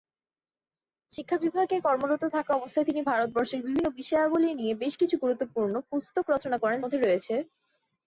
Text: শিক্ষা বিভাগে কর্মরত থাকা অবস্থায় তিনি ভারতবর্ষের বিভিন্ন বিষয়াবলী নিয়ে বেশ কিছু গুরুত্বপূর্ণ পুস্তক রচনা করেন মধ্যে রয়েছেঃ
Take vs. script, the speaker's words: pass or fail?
pass